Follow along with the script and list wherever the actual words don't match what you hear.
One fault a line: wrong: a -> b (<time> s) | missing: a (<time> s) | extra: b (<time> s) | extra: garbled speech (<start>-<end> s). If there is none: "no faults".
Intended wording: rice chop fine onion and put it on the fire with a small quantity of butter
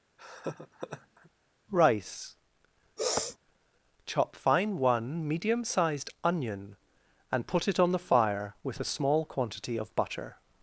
extra: one medium sized (4.8 s)